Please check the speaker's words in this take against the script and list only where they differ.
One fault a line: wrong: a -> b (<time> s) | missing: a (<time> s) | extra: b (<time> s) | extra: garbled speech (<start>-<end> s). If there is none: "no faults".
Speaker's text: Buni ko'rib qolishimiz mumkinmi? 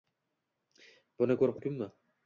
missing: qolishimiz (1.6 s)